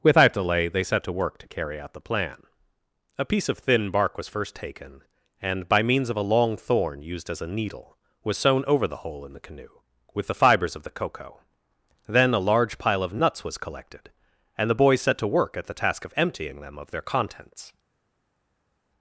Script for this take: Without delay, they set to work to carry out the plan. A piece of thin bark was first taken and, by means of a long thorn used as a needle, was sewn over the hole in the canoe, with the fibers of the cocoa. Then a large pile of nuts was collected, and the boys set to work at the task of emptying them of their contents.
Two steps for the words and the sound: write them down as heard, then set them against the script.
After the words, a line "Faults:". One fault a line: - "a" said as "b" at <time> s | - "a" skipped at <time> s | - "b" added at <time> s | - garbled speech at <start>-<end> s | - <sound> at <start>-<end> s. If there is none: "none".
Without delay, they set to work to carry out the plan. A piece of thin bark was first taken and, by means of a long thorn used as a needle, was sewn over the hole in the canoe, with the fibers of the cocoa. Then a large pile of nuts was collected, and the boys set to work at the task of emptying them of their contents.
Faults:
none